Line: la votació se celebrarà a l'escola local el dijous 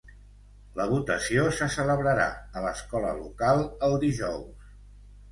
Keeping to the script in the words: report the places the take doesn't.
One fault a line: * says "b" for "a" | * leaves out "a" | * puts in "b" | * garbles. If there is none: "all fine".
all fine